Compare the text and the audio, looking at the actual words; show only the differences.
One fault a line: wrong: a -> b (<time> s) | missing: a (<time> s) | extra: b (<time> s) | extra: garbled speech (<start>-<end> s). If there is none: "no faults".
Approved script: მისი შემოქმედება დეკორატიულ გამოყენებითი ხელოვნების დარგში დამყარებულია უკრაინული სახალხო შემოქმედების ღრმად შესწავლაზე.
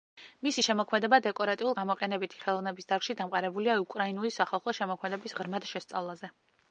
no faults